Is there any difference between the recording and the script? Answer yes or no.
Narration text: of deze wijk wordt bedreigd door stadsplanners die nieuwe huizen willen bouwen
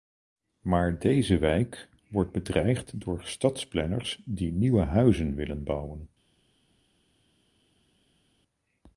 yes